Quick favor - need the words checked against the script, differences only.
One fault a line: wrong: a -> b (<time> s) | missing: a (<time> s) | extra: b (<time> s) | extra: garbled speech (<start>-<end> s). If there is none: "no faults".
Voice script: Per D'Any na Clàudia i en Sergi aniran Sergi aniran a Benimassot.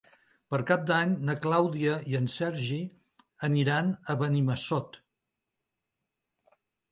extra: Cap (0.7 s)
missing: Sergi aniran (3.9 s)